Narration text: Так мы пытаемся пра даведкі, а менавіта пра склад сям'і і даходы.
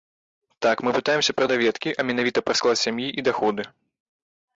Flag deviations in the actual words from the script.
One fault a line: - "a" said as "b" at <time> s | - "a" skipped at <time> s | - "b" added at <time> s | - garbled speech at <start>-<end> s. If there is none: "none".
none